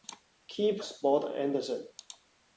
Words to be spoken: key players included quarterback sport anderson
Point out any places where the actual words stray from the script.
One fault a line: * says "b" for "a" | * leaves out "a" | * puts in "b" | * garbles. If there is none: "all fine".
* leaves out "players included quarterback"